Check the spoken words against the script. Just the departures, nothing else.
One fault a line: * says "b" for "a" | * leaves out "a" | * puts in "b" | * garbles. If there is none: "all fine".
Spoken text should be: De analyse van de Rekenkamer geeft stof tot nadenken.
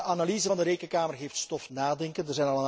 * leaves out "tot"